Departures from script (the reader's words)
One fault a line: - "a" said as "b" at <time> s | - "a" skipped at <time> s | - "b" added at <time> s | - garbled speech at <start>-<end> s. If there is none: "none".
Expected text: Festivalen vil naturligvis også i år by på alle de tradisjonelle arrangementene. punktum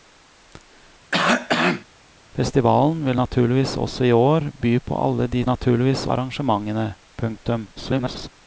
- "tradisjonelle" said as "naturligvis" at 5.5 s
- garbled speech at 7.8-8.3 s